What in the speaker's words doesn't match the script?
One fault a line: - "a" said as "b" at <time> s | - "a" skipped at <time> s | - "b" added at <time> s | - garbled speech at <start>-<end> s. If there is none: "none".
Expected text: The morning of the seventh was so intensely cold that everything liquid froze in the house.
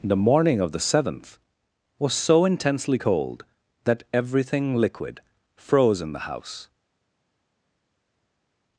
none